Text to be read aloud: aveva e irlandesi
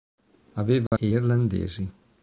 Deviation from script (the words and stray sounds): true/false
true